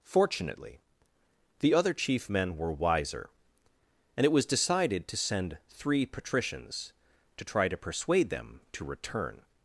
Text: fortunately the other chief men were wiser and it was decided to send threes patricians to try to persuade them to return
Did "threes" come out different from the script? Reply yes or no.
yes